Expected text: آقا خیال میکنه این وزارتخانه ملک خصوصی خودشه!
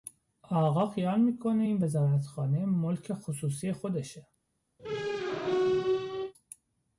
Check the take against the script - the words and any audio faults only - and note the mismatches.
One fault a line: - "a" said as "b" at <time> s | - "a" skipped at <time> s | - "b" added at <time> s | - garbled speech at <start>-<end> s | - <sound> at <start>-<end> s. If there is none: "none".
- squeak at 4.8-6.3 s